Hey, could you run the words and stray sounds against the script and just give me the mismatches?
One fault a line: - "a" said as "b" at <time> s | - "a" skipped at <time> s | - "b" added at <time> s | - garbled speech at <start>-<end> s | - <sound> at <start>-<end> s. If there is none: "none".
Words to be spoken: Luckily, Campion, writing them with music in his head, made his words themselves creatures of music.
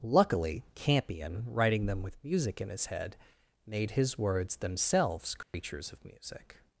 - dropout at 5.4-5.5 s